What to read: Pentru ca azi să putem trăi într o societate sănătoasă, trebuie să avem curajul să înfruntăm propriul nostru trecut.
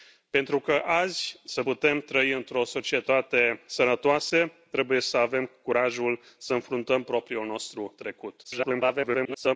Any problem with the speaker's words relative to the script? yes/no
yes